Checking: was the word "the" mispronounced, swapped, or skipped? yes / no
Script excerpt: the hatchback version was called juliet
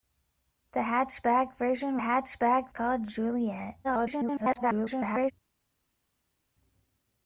no